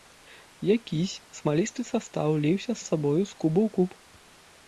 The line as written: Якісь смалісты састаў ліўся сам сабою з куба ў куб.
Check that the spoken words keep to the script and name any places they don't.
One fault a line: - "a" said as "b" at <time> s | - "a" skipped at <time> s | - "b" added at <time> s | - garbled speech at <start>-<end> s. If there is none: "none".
- "сам" skipped at 2.7 s